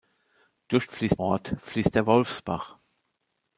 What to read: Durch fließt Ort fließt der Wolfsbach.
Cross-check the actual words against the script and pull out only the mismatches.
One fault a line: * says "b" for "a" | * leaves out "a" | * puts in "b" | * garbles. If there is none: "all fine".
all fine